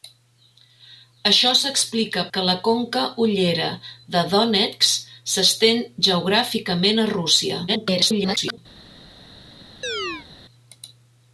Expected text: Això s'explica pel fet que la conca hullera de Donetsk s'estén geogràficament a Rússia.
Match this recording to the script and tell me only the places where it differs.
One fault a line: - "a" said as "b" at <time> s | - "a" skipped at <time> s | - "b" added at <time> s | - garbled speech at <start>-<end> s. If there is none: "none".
- "pel fet" skipped at 2.2 s
- garbled speech at 7.7-8.6 s